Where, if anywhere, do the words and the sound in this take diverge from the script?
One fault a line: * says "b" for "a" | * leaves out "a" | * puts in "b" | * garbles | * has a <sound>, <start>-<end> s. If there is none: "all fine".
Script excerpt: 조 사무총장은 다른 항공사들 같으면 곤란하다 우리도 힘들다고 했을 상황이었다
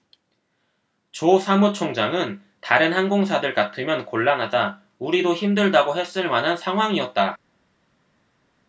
* puts in "만한"